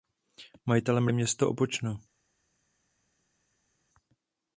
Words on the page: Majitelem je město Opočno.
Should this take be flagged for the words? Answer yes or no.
no